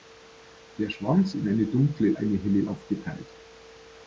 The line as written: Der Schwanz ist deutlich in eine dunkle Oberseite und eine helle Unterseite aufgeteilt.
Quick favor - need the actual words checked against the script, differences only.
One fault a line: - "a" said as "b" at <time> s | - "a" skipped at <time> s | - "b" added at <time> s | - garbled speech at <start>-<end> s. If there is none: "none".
- "ist deutlich" skipped at 1.3 s
- "Oberseite und" skipped at 2.2 s
- "Unterseite" skipped at 2.7 s